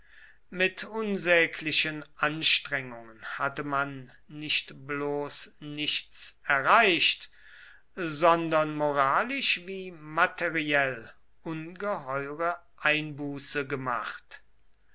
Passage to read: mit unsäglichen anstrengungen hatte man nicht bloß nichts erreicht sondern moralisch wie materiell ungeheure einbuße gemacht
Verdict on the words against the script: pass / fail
pass